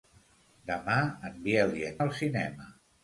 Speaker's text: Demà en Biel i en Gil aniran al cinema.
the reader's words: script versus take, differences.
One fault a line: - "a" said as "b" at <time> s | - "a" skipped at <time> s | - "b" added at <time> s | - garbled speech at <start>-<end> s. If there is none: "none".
- "Gil aniran" skipped at 2.0 s